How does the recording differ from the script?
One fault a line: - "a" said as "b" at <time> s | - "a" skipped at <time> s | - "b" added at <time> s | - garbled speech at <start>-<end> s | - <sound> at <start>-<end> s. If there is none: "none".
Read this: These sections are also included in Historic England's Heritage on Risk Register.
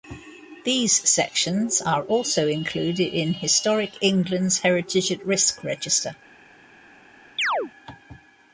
- "on" said as "at" at 5.1 s
- chirp at 7.4-7.7 s